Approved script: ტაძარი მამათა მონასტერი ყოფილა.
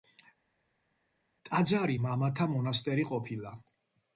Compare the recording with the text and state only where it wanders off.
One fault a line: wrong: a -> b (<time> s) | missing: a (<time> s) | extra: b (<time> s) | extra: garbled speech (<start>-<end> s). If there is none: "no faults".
no faults